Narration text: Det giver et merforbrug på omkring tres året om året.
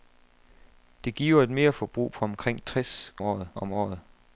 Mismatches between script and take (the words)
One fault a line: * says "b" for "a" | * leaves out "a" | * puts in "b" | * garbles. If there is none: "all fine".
all fine